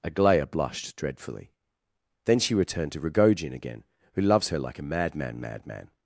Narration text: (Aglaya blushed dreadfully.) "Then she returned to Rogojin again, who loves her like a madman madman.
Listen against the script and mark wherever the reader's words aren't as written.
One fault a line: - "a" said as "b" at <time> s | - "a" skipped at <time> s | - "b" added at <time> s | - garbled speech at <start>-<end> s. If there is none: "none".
none